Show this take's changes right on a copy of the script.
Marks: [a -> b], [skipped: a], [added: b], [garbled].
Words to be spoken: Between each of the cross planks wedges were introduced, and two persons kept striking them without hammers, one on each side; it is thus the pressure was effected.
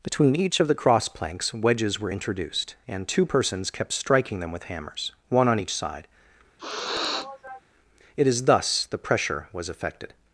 Between each of the cross planks wedges were introduced, and two persons kept striking them [without -> with] hammers, one on each side; it is thus the pressure was effected.